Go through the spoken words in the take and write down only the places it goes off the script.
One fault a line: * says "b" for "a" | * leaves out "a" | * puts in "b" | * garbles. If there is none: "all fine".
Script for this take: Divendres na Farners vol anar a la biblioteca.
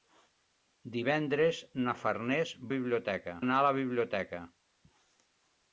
* says "biblioteca" for "vol"